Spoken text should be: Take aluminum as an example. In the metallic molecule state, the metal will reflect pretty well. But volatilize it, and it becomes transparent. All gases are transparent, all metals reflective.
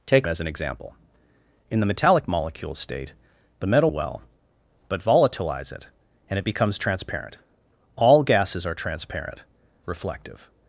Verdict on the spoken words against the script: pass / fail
fail